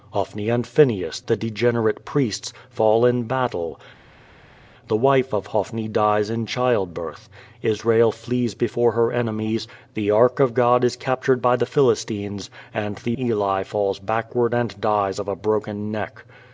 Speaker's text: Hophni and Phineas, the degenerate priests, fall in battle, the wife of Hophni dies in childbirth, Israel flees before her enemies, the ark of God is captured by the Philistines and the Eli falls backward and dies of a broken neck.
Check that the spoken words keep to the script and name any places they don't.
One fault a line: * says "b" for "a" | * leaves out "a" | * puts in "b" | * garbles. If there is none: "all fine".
all fine